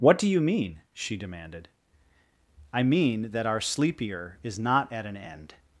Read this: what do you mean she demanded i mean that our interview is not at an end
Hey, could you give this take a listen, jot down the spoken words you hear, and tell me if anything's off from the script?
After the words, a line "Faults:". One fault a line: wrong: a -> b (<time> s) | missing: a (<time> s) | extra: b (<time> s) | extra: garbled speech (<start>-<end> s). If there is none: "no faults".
what do you mean she demanded i mean that our sleepier is not at an end
Faults:
wrong: interview -> sleepier (3.6 s)